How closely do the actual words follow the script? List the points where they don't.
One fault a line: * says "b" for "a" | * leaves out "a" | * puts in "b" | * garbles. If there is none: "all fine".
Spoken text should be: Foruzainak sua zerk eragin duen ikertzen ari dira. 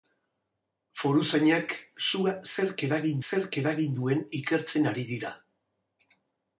* puts in "zerk eragin"